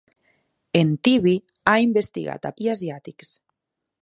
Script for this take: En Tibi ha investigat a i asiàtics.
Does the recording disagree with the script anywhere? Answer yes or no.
no